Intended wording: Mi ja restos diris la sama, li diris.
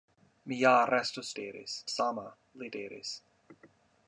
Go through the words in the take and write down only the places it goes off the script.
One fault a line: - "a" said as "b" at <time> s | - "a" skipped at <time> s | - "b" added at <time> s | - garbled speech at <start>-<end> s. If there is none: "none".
none